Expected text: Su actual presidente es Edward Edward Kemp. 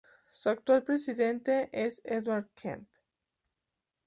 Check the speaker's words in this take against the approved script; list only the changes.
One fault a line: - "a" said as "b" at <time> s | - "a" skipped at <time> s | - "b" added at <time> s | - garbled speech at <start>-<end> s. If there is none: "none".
- "Edward" skipped at 2.5 s